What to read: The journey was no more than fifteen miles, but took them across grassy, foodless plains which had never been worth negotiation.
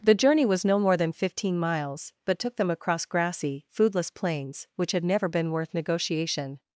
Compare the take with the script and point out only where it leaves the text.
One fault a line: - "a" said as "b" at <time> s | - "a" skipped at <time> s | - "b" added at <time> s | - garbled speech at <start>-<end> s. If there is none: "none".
none